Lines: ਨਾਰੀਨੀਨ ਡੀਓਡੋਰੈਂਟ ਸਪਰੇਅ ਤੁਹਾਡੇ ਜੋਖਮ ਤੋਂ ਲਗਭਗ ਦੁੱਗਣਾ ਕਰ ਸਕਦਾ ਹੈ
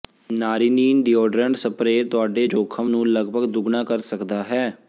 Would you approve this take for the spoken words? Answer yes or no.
no